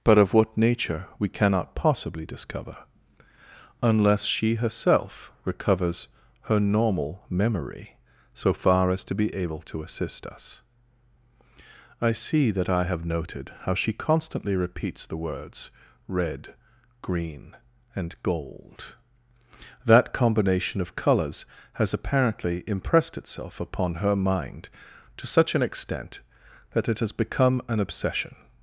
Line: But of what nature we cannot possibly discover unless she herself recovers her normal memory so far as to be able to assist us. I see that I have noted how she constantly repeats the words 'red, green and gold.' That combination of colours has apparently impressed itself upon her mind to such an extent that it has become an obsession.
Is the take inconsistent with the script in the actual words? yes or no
no